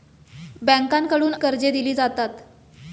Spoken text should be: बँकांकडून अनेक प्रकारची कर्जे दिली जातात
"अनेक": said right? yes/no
no